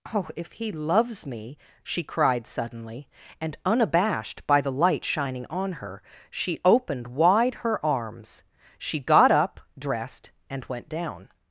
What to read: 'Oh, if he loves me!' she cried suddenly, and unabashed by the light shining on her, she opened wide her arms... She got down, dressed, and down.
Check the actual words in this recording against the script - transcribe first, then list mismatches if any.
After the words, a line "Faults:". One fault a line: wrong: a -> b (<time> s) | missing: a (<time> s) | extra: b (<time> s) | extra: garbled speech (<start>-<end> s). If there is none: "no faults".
'Oh, if he loves me!' she cried suddenly, and unabashed by the light shining on her, she opened wide her arms... She got up, dressed, and went down.
Faults:
wrong: down -> up (9.3 s)
extra: went (10.7 s)